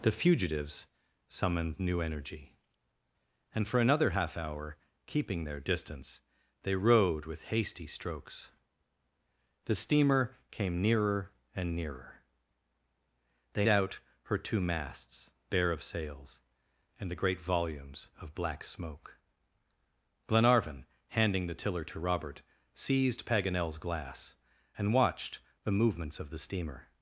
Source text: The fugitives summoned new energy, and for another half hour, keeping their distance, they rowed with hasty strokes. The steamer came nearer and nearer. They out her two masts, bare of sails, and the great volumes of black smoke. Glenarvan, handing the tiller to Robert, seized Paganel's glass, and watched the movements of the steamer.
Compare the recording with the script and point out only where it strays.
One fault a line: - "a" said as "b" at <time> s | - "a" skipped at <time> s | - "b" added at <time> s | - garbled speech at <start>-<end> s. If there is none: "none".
none